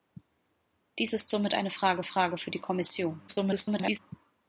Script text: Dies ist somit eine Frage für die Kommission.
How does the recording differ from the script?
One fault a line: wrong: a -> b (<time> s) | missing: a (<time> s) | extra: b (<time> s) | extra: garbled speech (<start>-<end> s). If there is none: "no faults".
extra: Frage (2.0 s)
extra: garbled speech (3.3-4.0 s)